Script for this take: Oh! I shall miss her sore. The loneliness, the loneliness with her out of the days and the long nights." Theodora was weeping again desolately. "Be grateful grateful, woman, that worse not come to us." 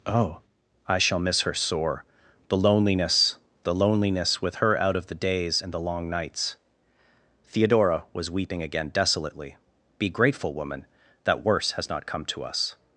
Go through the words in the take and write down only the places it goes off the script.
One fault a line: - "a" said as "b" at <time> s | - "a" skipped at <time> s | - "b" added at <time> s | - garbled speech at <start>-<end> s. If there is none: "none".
- "grateful" skipped at 10.5 s
- "has" added at 11.7 s